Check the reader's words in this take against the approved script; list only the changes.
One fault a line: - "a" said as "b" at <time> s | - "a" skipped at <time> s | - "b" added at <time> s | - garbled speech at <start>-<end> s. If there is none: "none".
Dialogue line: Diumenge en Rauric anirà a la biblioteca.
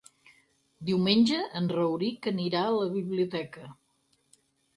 none